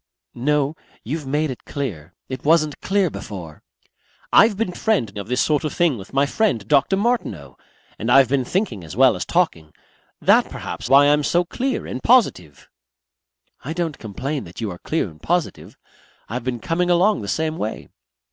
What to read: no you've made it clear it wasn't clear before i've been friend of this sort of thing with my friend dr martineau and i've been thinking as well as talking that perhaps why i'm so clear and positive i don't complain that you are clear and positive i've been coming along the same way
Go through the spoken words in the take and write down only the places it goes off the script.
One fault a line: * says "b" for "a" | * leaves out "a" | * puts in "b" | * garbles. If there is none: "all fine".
all fine